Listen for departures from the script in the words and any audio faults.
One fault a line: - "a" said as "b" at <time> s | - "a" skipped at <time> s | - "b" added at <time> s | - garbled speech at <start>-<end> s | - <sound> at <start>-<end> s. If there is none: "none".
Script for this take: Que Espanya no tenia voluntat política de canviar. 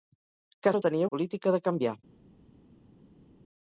- "Espanya" skipped at 0.7 s
- "voluntat" skipped at 1.1 s